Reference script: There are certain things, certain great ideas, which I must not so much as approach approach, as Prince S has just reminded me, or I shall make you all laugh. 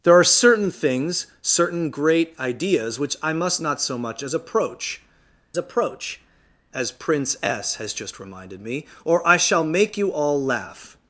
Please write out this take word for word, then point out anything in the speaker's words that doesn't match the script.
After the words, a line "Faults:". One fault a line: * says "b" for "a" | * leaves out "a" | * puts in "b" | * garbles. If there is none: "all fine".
There are certain things, certain great ideas, which I must not so much as approach approach, as Prince S has just reminded me, or I shall make you all laugh.
Faults:
all fine